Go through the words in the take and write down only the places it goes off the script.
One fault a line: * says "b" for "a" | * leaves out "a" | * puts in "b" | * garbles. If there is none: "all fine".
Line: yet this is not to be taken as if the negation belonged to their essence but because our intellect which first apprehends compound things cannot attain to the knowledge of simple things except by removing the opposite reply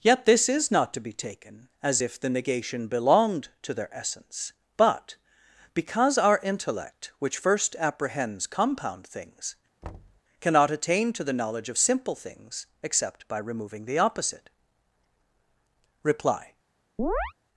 all fine